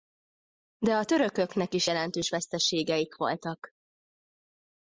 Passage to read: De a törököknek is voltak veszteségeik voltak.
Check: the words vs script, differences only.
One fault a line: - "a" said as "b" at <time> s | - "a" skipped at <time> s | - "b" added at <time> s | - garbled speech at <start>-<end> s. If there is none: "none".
- "voltak" said as "jelentős" at 1.8 s